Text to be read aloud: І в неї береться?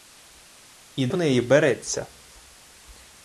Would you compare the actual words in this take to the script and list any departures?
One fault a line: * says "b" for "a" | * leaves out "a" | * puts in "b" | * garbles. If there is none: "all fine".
all fine